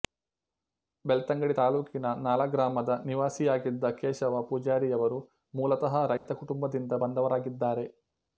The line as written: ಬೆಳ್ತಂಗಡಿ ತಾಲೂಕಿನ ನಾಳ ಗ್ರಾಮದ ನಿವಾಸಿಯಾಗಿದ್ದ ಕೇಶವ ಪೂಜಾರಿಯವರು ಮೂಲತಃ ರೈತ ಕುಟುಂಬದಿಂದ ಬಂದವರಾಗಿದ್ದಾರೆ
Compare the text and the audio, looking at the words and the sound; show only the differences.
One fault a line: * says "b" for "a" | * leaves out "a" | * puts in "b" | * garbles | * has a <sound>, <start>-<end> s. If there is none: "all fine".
* has a dropout, 6.2-6.3 s